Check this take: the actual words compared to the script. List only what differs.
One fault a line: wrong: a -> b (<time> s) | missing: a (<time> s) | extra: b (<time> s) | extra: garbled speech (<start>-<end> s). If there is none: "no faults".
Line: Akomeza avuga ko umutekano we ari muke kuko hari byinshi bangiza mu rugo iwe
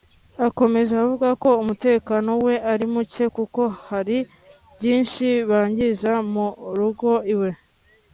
no faults